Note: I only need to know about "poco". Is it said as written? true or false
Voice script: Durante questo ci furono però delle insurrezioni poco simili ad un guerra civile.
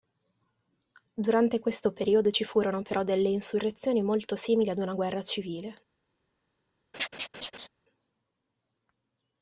false